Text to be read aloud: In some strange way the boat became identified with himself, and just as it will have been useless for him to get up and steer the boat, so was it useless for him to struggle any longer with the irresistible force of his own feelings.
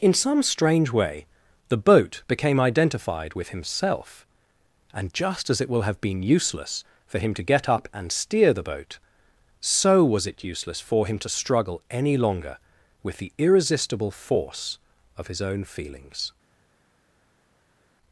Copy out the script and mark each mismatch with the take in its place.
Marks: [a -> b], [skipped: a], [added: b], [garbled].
In some strange way the boat became identified with himself, and just as it will have been useless for him to get up and steer the boat, so was it useless for him to struggle any longer with the irresistible force of his own feelings.